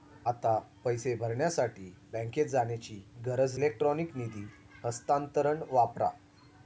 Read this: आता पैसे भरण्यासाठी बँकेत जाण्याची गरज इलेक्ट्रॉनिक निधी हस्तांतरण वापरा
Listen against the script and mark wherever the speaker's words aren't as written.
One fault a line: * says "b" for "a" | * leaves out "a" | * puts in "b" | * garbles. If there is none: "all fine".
all fine